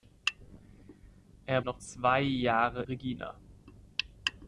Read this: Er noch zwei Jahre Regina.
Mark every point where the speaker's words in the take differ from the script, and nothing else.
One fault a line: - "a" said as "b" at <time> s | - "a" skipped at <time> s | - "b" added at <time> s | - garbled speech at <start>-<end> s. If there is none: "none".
none